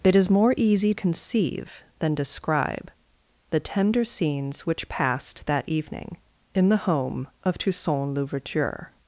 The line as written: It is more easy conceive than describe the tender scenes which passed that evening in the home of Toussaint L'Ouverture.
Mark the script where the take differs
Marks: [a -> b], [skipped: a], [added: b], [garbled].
It is more easy conceive than describe the tender scenes which passed that evening in the home of Toussaint L'Ouverture.